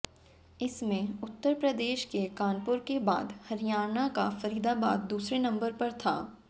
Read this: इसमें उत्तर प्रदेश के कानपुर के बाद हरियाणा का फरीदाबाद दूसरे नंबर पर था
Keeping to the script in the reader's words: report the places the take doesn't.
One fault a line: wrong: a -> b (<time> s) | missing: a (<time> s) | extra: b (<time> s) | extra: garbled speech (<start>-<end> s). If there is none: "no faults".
no faults